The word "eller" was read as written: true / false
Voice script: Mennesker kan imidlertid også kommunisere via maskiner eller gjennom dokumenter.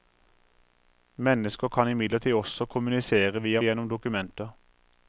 false